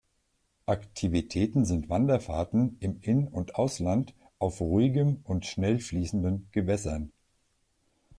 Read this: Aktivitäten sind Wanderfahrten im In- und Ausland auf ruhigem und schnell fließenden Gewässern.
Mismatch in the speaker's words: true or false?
false